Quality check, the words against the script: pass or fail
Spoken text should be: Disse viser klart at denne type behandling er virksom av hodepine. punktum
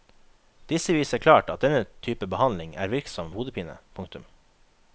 pass